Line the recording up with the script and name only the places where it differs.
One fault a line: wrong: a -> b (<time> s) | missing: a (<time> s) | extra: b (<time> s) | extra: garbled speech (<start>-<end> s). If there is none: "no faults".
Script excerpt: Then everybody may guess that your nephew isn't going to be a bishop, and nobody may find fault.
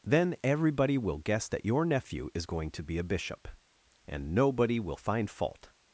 wrong: may -> will (1.0 s)
wrong: isn't -> is (2.3 s)
wrong: may -> will (4.8 s)